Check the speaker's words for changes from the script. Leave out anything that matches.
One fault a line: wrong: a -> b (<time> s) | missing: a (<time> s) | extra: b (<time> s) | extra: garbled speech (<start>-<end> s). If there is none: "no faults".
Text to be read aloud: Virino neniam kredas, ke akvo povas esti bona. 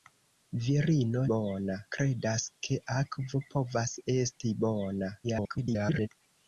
wrong: neniam -> bona (1.4 s)
extra: garbled speech (5.2-6.1 s)